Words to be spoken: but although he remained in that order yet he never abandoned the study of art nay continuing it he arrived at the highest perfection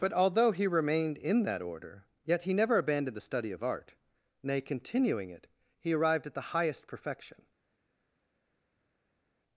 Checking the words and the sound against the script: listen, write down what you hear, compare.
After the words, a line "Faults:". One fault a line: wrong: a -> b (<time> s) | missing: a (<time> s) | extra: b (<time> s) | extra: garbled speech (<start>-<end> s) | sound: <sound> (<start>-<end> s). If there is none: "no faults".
but although he remained in that order yet he never abandoned the study of art nay continuing it he arrived at the highest perfection
Faults:
no faults